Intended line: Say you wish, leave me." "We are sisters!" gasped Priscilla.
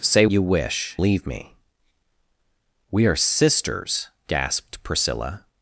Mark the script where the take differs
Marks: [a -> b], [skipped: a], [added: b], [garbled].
Say you wish, leave me." "We are sisters!" gasped Priscilla.